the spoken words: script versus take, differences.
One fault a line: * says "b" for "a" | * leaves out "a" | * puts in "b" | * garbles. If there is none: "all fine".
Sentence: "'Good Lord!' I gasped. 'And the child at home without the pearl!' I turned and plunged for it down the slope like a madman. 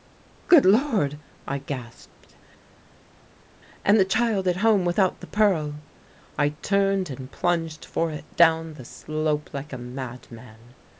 all fine